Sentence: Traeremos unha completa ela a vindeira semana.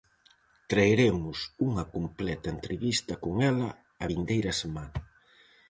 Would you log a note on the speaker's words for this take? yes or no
yes